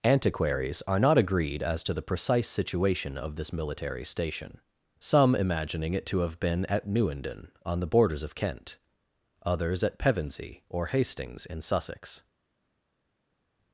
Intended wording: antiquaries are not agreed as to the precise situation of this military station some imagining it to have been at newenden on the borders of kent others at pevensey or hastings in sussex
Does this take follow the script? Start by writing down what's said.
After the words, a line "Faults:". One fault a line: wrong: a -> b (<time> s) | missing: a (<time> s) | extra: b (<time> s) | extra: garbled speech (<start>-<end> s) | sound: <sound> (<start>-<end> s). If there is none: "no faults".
antiquaries are not agreed as to the precise situation of this military station some imagining it to have been at newenden on the borders of kent others at pevensey or hastings in sussex
Faults:
no faults